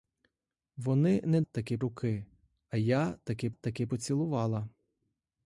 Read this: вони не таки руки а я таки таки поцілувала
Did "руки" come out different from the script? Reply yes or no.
no